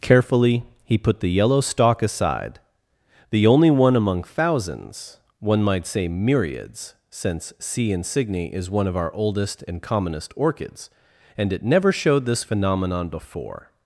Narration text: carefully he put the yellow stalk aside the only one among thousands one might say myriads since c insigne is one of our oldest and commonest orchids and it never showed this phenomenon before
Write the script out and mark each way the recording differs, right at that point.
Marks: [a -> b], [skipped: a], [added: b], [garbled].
carefully he put the yellow stalk aside the only one among thousands one might say myriads since c insigne is one of our oldest and commonest orchids and it never showed this phenomenon before